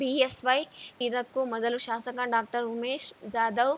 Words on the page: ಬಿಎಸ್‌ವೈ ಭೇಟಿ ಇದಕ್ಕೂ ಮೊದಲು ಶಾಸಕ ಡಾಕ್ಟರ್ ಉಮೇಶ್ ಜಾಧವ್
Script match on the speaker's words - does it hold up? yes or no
no